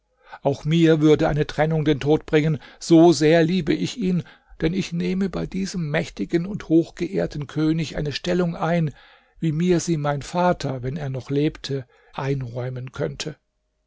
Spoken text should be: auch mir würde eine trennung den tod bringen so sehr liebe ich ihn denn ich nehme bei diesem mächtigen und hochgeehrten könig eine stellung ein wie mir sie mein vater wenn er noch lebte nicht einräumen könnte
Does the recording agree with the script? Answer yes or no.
no